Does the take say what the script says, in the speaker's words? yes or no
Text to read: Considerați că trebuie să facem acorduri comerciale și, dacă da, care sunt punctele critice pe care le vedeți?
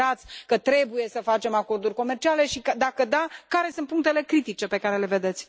yes